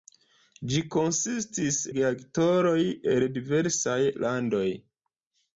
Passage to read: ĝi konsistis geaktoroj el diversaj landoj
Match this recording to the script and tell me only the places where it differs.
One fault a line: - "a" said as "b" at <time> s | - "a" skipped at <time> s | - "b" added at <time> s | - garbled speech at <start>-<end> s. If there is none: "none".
none